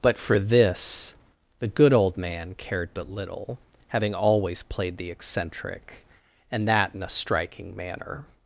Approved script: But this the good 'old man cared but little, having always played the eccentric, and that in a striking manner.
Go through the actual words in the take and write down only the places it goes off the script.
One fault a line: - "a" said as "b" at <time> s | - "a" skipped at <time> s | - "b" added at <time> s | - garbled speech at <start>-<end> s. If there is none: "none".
- "for" added at 0.2 s